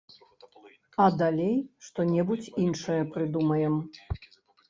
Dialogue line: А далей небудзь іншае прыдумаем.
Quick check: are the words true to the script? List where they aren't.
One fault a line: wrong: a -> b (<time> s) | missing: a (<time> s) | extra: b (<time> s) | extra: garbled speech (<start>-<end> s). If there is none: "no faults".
extra: што (1.9 s)